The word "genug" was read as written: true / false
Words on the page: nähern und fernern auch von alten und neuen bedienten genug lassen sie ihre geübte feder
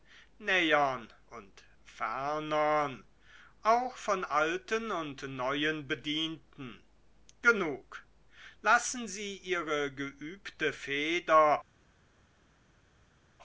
true